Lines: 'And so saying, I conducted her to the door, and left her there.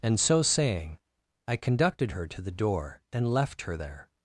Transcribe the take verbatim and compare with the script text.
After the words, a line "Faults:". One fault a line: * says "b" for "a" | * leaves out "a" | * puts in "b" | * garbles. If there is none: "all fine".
'And so saying, I conducted her to the door, and left her there.
Faults:
all fine